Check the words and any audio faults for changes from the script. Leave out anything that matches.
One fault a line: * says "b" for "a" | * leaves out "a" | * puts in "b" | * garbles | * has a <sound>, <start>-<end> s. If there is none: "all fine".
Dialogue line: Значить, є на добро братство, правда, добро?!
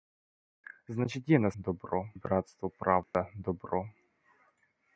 * has a dropout, 3.0-3.1 s